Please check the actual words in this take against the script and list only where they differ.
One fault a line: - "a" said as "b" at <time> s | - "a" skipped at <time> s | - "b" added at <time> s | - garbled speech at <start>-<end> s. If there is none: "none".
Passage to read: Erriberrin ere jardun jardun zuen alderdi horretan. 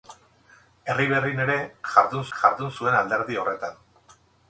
none